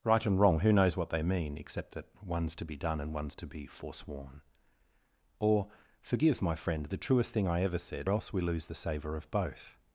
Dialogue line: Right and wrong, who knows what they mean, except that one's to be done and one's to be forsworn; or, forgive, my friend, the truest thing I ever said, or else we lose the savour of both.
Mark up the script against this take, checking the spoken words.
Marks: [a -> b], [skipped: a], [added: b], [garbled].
Right and wrong, who knows what they mean, except that one's to be done and one's to be forsworn; or, forgive, my friend, the truest thing I ever said, [skipped: or] else we lose the savour of both.